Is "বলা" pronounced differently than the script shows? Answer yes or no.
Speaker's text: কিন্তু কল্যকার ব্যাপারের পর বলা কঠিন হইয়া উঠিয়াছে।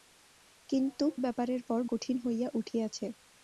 yes